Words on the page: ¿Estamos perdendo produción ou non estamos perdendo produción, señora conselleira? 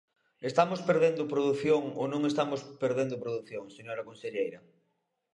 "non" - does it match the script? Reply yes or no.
yes